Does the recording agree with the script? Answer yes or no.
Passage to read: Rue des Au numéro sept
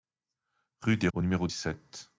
yes